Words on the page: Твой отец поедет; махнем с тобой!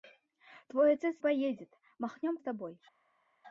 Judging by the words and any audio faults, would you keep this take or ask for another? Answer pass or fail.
pass